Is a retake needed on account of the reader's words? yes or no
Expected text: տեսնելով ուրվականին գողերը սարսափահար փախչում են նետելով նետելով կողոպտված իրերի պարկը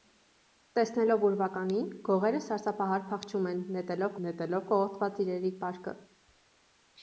no